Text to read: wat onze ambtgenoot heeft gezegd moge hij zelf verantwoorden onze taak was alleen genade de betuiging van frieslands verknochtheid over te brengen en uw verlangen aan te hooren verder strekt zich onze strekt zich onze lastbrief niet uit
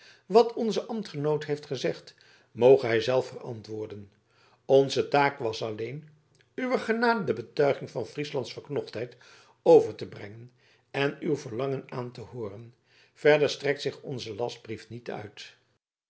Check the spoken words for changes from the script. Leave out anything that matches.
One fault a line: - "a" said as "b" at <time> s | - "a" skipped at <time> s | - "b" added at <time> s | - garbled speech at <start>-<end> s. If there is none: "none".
- "uwer" added at 6.5 s
- "strekt zich onze" skipped at 14.3 s